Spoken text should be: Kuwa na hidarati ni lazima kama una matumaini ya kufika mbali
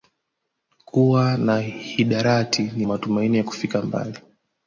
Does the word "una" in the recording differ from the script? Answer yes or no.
yes